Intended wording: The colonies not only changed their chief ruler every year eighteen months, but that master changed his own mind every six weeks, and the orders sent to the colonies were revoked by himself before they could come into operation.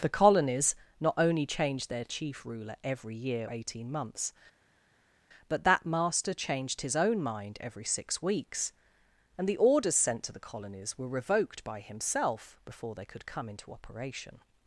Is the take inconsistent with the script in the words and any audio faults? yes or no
no